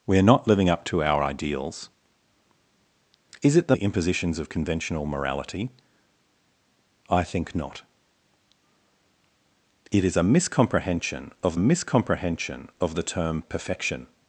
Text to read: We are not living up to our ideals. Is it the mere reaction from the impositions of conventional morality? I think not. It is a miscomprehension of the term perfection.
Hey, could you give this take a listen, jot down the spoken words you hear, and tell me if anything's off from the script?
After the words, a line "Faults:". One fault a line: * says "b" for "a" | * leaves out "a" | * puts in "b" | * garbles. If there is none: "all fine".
We are not living up to our ideals. Is it the the impositions of conventional morality? I think not. It is a miscomprehension of miscomprehension of the term perfection.
Faults:
* leaves out "mere reaction from"
* puts in "miscomprehension of"